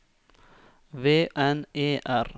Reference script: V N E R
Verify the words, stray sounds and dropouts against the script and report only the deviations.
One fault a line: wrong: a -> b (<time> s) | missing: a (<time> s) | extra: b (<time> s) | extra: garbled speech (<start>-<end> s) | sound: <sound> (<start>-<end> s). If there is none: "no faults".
no faults